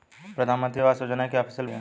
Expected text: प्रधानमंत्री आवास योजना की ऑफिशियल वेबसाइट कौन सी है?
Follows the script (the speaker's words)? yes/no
no